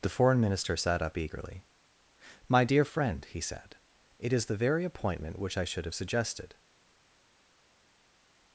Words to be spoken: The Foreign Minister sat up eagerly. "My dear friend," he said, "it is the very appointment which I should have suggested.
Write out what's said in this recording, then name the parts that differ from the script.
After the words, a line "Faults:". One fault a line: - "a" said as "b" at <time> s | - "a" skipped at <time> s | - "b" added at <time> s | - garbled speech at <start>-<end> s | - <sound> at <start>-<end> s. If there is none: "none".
The Foreign Minister sat up eagerly. "My dear friend," he said, "it is the very appointment which I should have suggested.
Faults:
none